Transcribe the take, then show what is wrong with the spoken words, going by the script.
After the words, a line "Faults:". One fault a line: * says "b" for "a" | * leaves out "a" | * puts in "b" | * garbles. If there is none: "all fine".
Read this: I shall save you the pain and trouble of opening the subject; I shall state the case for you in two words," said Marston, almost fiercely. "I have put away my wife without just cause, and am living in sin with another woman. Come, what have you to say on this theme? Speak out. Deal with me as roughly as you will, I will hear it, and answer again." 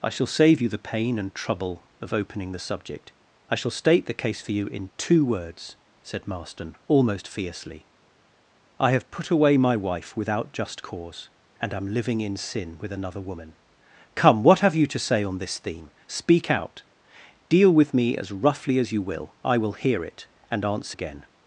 I shall save you the pain and trouble of opening the subject; I shall state the case for you in two words," said Marston, almost fiercely. "I have put away my wife without just cause, and am living in sin with another woman. Come, what have you to say on this theme? Speak out. Deal with me as roughly as you will, I will hear it, and answer again."
Faults:
all fine